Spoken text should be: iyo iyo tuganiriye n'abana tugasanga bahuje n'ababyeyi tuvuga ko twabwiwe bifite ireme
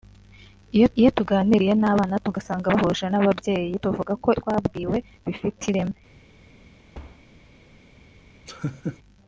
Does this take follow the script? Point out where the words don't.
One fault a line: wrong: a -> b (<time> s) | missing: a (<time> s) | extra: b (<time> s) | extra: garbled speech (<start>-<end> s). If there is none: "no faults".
no faults